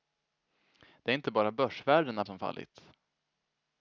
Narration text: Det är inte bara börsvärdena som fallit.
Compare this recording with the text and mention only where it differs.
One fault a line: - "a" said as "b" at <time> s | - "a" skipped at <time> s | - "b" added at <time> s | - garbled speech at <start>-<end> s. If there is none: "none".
none